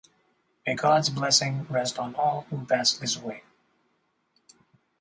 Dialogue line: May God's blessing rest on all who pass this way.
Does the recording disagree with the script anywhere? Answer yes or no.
no